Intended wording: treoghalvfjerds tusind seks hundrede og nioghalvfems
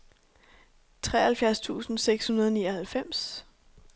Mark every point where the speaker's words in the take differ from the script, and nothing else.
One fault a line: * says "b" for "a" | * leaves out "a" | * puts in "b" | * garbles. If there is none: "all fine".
all fine